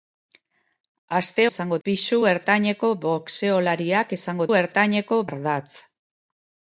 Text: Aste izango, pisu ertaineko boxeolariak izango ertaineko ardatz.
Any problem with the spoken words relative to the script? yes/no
no